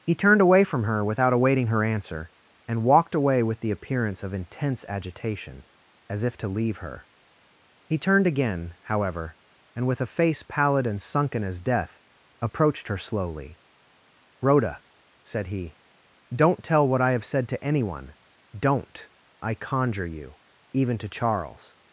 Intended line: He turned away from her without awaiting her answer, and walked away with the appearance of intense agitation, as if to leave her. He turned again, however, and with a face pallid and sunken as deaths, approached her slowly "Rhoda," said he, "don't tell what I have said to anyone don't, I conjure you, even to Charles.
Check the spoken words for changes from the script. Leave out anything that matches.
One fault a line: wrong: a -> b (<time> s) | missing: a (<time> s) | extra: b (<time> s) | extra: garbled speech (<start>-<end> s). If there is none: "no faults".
wrong: deaths -> death (11.6 s)